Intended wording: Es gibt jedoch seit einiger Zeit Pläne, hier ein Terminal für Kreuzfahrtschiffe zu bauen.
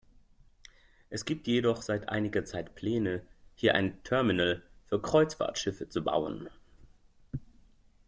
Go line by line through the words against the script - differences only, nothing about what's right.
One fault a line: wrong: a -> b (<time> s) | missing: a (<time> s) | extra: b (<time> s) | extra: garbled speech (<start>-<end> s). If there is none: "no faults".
no faults